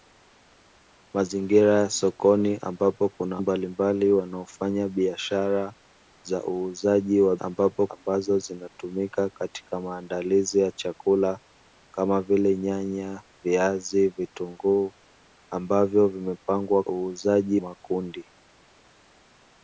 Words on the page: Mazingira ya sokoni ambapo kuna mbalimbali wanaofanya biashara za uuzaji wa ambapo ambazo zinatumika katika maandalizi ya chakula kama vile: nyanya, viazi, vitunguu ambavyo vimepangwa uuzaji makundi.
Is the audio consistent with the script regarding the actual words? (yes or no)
yes